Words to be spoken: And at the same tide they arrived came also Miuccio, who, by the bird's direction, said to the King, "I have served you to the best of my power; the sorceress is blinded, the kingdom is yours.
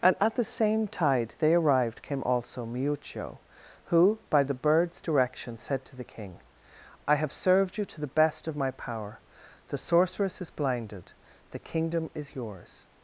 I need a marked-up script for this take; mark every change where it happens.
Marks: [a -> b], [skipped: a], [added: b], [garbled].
And at the same tide they arrived came also Miuccio, who, by the bird's direction, said to the King, "I have served you to the best of my power; the sorceress is blinded, the kingdom is yours.